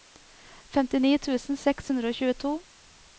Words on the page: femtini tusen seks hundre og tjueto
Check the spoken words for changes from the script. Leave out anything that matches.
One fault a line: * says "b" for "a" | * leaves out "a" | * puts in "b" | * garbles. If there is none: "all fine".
all fine